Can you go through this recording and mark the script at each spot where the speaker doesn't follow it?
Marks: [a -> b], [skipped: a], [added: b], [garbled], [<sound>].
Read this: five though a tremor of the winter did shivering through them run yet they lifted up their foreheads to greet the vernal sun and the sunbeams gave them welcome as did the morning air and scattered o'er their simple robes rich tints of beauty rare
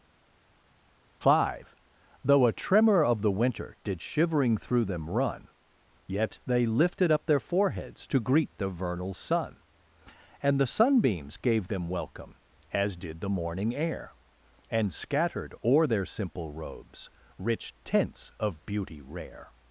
five though a tremor of the winter did shivering through them run yet they lifted up their foreheads to greet the vernal sun and the sunbeams gave them welcome as did the morning air and scattered o'er their simple robes rich tints of beauty rare